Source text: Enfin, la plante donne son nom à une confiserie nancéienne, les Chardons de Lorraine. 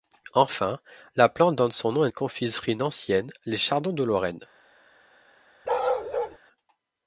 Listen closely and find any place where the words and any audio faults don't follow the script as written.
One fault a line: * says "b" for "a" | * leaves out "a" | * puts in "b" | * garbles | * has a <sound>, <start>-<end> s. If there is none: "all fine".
* has a bark, 5.6-6.4 s